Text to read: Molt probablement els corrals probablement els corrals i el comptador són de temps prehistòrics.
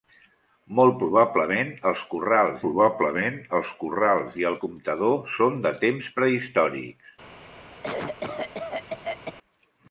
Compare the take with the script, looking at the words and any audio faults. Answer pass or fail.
fail